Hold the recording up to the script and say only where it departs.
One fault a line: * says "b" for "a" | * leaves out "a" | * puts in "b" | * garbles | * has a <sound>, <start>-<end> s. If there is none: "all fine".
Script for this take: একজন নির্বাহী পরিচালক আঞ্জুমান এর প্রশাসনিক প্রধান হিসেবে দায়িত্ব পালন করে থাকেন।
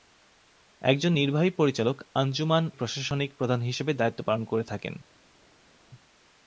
* leaves out "এর"